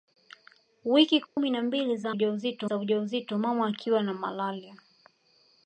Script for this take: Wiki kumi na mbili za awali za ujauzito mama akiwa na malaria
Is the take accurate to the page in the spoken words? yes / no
no